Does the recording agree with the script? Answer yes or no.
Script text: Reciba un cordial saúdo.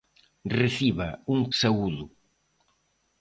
no